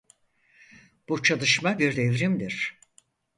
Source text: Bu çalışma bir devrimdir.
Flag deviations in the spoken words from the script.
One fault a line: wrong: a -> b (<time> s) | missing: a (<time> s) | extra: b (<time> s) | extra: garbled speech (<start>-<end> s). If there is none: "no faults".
no faults